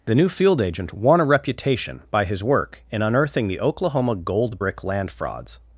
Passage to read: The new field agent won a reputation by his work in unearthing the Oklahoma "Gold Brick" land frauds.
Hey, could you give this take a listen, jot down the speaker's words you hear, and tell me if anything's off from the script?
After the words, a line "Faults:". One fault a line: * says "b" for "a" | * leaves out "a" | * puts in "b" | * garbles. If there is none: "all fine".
The new field agent won a reputation by his work in unearthing the Oklahoma "Gold Brick" land frauds.
Faults:
all fine